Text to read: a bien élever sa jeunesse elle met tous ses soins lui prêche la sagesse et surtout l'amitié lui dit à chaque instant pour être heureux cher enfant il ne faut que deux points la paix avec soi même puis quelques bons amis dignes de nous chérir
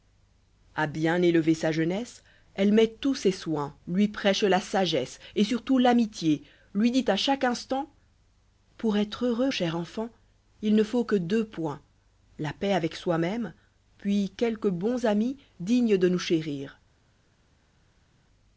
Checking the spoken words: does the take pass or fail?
pass